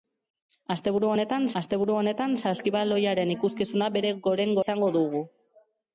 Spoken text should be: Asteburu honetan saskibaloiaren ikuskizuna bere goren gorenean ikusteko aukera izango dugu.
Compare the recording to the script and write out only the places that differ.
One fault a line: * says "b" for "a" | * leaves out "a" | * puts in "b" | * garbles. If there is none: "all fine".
* puts in "asteburu honetan"
* leaves out "gorenean ikusteko aukera"